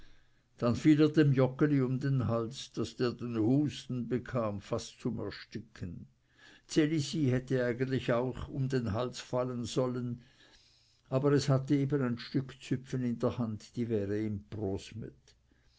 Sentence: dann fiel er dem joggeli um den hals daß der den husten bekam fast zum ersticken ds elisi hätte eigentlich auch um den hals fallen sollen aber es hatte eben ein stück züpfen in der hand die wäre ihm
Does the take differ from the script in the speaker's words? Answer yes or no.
no